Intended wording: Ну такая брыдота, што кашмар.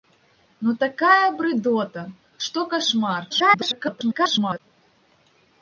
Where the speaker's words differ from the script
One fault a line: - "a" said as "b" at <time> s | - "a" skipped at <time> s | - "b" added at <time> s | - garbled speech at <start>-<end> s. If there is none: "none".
- garbled speech at 3.3-4.6 s